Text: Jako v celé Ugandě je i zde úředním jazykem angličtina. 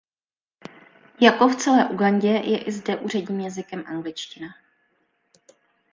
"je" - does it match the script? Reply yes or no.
yes